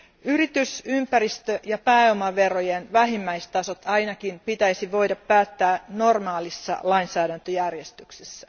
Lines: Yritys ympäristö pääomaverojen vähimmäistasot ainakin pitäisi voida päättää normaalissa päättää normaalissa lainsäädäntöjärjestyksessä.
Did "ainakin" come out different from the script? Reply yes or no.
no